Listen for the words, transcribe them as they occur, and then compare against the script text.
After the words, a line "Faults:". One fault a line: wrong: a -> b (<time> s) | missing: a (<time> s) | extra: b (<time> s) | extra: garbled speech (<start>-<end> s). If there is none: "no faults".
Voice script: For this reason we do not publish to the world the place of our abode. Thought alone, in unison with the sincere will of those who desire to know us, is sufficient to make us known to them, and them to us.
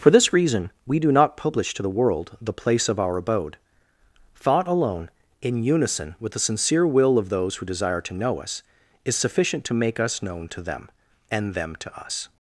For this reason we do not publish to the world the place of our abode. Thought alone, in unison with the sincere will of those who desire to know us, is sufficient to make us known to them, and them to us.
Faults:
no faults